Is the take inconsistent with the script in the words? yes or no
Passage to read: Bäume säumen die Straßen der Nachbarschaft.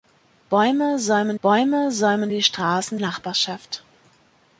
yes